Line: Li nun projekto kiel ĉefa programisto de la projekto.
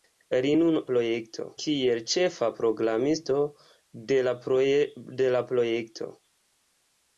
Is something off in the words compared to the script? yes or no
no